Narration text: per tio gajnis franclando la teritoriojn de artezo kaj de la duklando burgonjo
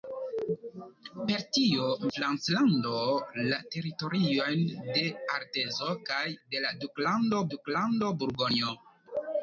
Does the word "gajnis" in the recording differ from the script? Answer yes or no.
yes